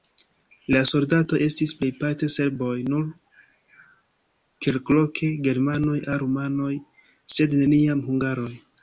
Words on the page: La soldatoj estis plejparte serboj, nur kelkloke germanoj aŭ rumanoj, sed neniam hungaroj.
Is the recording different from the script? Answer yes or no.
no